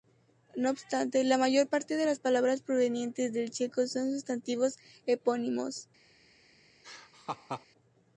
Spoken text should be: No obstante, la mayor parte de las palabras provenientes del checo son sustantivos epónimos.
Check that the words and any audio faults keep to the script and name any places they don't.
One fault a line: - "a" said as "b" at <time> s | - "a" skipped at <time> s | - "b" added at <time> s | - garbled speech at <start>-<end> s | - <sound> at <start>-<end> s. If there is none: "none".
- laugh at 6.8-7.7 s